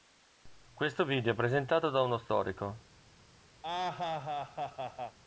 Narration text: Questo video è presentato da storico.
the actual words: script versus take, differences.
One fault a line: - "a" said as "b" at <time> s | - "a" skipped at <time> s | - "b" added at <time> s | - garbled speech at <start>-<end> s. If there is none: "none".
- "uno" added at 2.0 s